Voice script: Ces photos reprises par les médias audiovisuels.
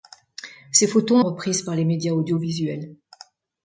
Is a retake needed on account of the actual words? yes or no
no